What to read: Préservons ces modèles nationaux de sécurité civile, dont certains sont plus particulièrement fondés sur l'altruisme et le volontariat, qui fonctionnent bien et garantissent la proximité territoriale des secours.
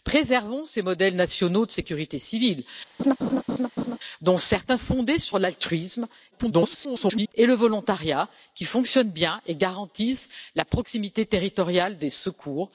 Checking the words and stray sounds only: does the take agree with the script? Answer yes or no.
no